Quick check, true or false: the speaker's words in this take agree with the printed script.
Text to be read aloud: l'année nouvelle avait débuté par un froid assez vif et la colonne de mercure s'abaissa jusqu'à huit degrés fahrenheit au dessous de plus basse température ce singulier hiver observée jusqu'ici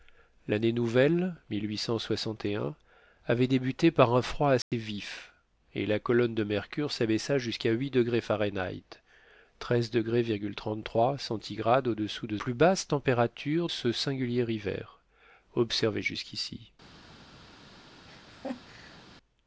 true